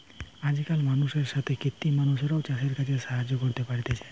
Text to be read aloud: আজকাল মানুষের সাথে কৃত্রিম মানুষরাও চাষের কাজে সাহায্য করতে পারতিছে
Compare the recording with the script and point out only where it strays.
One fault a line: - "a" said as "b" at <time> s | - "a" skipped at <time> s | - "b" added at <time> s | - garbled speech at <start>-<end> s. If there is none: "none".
none